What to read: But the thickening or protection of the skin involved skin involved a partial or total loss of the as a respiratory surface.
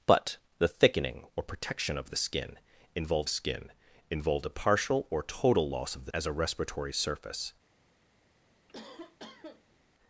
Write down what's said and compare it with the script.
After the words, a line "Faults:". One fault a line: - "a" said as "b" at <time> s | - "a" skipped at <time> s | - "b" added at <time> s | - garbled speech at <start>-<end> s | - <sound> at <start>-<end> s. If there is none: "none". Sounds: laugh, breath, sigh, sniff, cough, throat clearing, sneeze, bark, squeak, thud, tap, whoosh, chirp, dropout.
But the thickening or protection of the skin involved skin involved a partial or total loss of the as a respiratory surface.
Faults:
- cough at 8.7-9.8 s